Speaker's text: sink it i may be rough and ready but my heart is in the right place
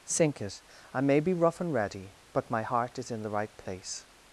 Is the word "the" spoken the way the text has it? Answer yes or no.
yes